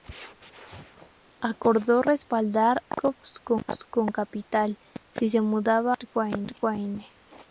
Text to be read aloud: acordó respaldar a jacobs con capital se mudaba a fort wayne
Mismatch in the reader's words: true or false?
true